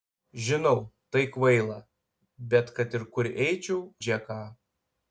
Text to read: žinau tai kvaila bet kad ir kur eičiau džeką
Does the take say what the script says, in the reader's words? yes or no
yes